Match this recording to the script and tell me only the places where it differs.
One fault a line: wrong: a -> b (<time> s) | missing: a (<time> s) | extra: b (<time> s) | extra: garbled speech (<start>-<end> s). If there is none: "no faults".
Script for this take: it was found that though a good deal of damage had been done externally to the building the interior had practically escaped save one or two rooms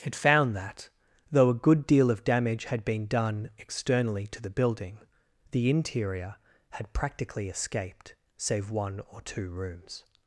missing: was (0.1 s)